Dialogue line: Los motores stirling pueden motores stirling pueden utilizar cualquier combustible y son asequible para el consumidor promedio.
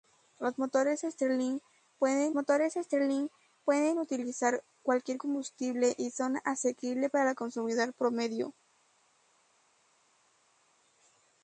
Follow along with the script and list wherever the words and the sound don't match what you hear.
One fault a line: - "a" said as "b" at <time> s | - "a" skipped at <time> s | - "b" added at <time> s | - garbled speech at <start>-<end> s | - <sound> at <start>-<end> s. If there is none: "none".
none